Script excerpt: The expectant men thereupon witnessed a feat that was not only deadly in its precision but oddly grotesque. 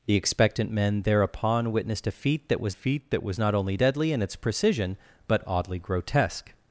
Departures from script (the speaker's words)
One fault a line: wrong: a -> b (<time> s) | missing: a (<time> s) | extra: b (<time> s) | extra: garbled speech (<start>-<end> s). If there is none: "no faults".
extra: feat that was (2.7 s)